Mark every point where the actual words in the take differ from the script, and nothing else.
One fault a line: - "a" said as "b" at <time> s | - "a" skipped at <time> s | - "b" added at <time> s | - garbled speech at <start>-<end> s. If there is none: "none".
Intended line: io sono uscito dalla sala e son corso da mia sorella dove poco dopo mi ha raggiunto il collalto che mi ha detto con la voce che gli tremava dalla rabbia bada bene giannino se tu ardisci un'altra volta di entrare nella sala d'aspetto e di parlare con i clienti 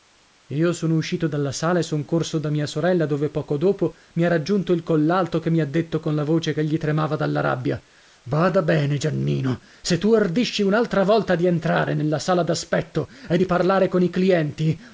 none